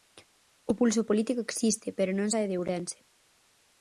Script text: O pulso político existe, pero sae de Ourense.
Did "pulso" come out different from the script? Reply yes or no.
no